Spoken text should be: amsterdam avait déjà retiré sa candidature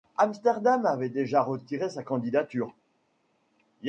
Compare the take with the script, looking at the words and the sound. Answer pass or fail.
pass